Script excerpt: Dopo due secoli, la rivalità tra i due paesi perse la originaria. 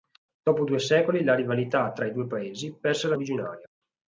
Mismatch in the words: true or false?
false